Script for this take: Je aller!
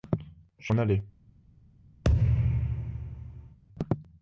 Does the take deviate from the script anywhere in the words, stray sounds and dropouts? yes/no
yes